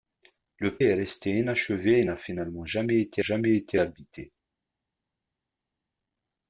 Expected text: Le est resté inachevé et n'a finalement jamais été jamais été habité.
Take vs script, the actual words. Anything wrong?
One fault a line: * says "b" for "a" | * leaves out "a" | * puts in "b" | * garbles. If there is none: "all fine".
all fine